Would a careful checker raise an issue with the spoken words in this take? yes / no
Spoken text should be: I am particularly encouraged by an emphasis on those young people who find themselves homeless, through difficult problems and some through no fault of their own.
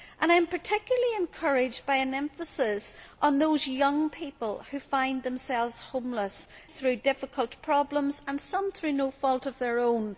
no